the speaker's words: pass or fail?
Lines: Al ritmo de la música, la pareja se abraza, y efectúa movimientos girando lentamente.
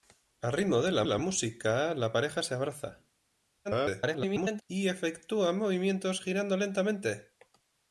fail